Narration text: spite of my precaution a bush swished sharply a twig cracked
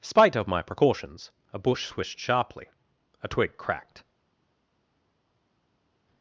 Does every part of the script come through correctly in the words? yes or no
no